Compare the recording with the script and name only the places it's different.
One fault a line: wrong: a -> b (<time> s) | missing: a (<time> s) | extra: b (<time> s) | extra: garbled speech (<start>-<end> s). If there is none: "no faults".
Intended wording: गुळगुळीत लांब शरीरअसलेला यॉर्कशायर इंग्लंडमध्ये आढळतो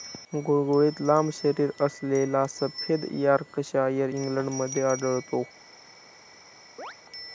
extra: सफेद (2.5 s)